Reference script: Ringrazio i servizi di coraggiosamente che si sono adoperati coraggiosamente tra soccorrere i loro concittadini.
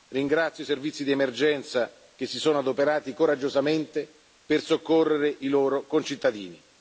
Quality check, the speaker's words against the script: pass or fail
fail